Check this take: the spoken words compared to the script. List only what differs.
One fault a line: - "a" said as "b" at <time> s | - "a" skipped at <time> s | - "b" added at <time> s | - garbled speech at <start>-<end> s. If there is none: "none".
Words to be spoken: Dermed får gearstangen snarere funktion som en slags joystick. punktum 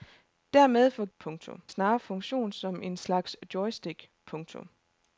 - "gearstangen" said as "punktum" at 1.2 s